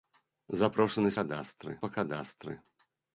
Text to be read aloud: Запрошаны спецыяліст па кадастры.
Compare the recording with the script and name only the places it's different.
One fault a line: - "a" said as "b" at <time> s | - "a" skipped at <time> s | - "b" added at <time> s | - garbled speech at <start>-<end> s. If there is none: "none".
- "спецыяліст" said as "кадастры" at 1.2 s